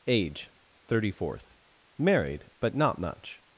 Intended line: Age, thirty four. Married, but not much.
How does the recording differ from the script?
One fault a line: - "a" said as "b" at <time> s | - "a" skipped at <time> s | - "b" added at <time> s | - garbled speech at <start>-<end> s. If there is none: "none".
- "four" said as "fourth" at 1.1 s